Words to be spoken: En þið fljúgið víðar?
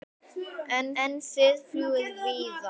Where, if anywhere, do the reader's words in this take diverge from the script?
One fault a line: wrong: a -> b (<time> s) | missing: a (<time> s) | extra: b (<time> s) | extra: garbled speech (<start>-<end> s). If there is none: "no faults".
extra: en (1.0 s)